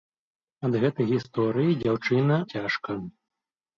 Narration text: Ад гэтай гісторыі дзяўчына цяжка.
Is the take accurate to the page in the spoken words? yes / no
yes